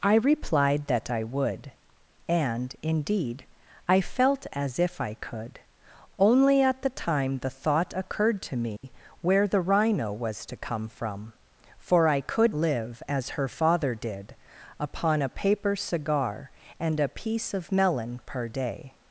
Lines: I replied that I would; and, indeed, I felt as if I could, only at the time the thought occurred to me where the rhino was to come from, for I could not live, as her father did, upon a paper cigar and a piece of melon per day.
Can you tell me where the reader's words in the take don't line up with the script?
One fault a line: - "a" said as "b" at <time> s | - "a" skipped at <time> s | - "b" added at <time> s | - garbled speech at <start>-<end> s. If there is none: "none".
- "not" skipped at 12.6 s